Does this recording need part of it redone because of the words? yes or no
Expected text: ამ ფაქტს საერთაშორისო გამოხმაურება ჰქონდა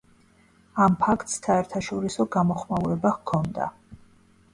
no